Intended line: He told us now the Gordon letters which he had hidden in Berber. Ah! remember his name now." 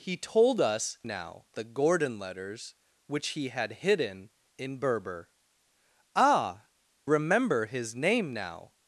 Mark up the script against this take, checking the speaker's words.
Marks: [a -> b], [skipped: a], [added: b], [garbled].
He told us now the Gordon letters which he had hidden in Berber. Ah! remember his name now."